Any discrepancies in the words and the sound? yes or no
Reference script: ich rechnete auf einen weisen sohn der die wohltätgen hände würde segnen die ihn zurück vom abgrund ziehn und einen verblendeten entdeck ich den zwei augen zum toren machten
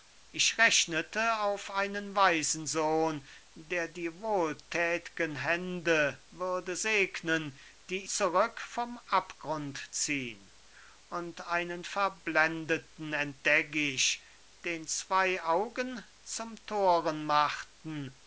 yes